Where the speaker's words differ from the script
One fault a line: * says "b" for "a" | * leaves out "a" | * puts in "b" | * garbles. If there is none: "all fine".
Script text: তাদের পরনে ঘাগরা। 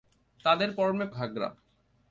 all fine